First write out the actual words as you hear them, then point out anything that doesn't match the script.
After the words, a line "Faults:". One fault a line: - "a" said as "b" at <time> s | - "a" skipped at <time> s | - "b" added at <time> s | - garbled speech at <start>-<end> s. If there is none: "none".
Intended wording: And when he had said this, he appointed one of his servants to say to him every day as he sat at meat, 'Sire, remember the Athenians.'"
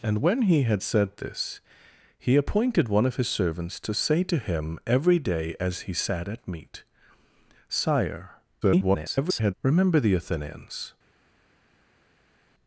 And when he had said this, he appointed one of his servants to say to him every day as he sat at meat, 'Sire, [garbled] remember the Athenians.'"
Faults:
- garbled speech at 8.6-9.5 s